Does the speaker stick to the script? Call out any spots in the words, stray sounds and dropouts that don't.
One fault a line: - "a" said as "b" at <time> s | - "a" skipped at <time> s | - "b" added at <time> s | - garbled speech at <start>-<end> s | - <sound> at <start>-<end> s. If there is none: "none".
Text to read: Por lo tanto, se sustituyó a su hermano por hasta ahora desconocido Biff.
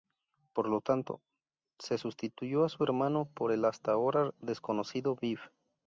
- "el" added at 3.5 s